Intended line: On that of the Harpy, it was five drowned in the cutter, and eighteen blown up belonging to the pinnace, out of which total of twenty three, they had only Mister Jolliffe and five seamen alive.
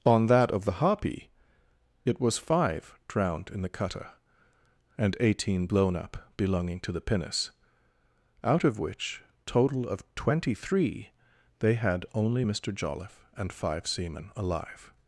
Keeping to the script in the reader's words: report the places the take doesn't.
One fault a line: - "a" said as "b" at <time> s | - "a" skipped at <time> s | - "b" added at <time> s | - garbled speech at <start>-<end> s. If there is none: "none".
none